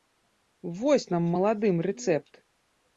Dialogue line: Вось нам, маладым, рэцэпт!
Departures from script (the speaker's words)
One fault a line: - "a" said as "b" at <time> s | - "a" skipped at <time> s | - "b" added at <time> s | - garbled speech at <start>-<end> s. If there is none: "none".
none